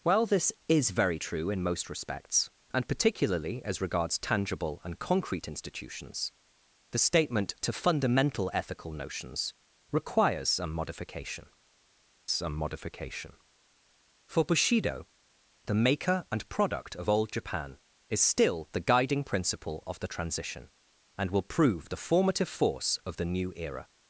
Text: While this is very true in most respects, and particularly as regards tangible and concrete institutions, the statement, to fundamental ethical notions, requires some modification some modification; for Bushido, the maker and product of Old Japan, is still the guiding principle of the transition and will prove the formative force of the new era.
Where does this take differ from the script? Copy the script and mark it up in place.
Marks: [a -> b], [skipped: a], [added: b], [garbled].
While this is very true in most respects, and particularly as regards tangible and concrete institutions, the statement, to fundamental ethical notions, requires some modification some modification; for Bushido, the maker and product of Old Japan, is still the guiding principle of the transition and will prove the formative force of the new era.